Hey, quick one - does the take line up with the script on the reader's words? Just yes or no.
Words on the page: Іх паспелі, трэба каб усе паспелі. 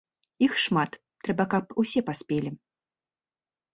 no